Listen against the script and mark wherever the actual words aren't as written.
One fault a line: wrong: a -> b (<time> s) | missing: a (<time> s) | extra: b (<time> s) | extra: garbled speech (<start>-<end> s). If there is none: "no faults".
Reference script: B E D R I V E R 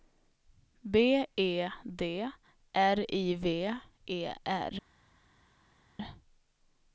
no faults